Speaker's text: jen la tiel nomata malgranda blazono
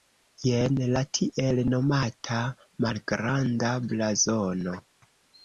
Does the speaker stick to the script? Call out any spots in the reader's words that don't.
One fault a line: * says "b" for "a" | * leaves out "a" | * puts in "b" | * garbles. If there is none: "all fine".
all fine